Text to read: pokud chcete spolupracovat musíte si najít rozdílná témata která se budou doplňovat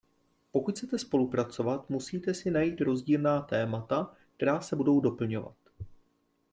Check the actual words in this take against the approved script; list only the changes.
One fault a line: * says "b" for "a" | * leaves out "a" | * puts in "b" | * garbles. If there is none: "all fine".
all fine